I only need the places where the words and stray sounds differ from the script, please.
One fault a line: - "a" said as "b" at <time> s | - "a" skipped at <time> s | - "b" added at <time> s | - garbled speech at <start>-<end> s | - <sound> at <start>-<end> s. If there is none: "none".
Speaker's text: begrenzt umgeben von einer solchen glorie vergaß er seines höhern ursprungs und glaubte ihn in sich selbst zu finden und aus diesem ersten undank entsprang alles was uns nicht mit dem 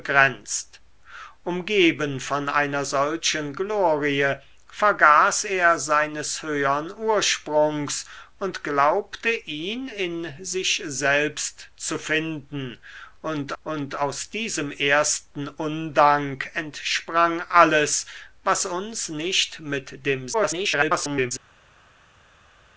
- "und" added at 13.6 s
- garbled speech at 20.3-21.3 s